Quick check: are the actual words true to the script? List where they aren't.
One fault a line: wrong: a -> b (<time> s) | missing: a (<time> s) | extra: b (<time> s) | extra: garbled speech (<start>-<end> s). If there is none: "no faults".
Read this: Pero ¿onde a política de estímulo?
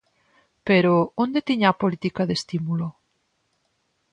extra: tiña (1.5 s)